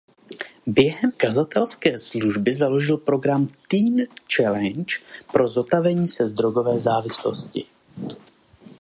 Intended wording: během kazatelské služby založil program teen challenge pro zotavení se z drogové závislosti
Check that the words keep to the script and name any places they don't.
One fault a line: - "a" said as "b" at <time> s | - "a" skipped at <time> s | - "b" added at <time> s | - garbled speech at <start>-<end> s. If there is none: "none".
none